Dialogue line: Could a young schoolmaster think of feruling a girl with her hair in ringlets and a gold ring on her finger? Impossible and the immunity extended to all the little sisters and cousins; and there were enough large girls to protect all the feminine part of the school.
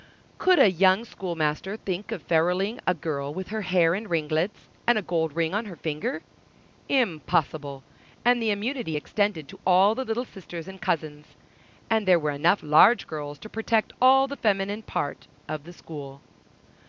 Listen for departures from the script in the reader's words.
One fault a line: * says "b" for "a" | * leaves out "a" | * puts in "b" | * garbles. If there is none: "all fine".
all fine